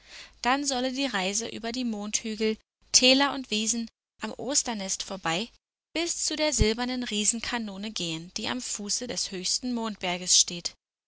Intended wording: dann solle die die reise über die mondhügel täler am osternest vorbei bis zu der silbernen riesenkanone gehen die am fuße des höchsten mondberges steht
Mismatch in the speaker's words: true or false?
true